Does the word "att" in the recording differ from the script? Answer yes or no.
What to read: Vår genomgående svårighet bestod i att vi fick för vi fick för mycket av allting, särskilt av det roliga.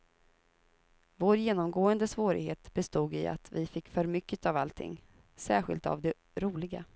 no